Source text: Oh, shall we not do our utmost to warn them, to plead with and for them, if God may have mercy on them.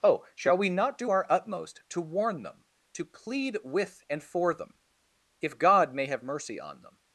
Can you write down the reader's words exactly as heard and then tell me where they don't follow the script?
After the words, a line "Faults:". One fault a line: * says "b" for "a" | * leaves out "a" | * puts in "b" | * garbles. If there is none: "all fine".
Oh, shall we not do our utmost to warn them, to plead with and for them, if God may have mercy on them.
Faults:
all fine